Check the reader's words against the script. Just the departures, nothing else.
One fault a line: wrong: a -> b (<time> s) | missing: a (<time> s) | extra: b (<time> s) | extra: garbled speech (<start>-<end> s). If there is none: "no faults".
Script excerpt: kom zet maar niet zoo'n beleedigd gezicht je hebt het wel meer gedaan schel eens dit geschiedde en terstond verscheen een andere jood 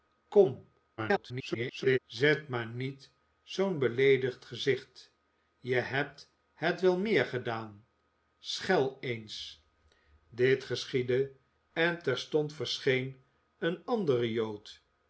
extra: garbled speech (1.0-2.0 s)